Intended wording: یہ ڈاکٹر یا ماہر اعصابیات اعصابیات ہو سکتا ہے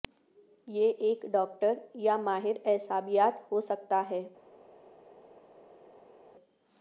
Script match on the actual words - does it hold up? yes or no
no